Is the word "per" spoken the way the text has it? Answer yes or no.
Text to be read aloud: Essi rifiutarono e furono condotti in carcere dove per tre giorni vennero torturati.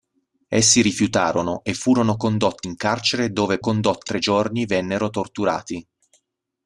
no